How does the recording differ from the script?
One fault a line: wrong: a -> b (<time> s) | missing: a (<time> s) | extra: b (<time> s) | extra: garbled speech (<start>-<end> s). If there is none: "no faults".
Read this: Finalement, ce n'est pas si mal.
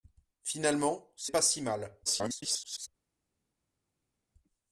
missing: n'est (1.3 s)
extra: garbled speech (2.1-2.9 s)